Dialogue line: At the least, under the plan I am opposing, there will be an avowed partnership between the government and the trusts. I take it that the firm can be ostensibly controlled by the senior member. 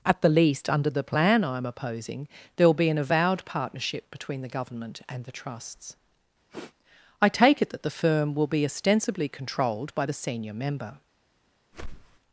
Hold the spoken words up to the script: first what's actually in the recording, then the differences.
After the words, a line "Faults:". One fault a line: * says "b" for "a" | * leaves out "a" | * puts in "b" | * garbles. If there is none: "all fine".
At the least, under the plan I am opposing, there will be an avowed partnership between the government and the trusts. I take it that the firm will be ostensibly controlled by the senior member.
Faults:
* says "will" for "can"